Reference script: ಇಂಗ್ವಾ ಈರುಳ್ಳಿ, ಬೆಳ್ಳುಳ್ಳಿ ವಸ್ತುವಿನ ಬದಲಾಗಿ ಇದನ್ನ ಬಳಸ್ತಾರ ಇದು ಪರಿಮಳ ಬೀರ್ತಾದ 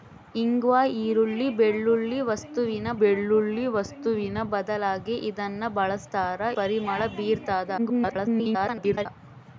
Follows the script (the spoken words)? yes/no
no